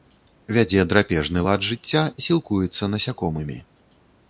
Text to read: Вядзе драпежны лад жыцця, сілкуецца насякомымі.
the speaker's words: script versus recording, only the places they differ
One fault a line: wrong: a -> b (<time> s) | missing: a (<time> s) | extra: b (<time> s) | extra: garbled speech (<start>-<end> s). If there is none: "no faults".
no faults